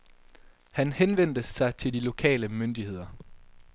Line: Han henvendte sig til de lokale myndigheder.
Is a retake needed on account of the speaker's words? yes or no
no